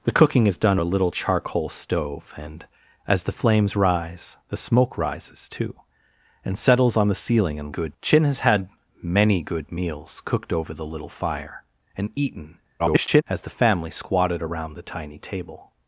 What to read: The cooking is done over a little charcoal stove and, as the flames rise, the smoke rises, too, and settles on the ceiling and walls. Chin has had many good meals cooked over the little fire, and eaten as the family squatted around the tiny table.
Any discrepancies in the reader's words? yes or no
yes